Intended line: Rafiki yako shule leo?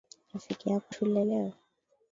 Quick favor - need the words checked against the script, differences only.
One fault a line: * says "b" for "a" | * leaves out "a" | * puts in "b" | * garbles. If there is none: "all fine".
all fine